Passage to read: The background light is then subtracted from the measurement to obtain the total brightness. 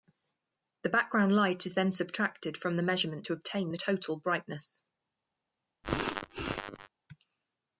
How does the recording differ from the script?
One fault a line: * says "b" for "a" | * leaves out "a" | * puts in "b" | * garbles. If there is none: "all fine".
all fine